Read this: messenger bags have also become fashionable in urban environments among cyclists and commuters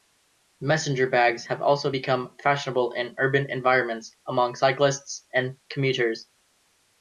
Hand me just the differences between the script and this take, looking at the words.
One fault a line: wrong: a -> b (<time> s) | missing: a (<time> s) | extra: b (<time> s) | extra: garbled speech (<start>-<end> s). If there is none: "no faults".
no faults